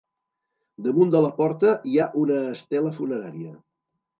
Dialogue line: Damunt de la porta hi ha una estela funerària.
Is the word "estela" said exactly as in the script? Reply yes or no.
yes